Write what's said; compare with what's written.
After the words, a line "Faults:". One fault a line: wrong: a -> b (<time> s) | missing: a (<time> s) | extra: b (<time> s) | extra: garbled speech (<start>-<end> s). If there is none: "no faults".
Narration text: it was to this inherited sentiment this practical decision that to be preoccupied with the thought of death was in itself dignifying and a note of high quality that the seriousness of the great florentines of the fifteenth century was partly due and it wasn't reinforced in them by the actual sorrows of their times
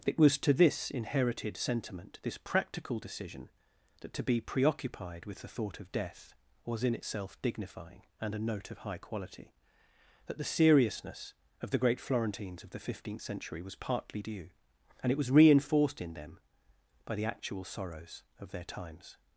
it was to this inherited sentiment this practical decision that to be preoccupied with the thought of death was in itself dignifying and a note of high quality that the seriousness of the great florentines of the fifteenth century was partly due and it was reinforced in them by the actual sorrows of their times
Faults:
wrong: wasn't -> was (15.2 s)